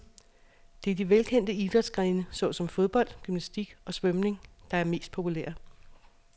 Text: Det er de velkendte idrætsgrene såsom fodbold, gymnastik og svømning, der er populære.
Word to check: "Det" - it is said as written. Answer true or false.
true